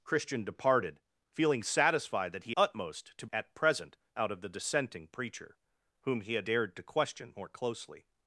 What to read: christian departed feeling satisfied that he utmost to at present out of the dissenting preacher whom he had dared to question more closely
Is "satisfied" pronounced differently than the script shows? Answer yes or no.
no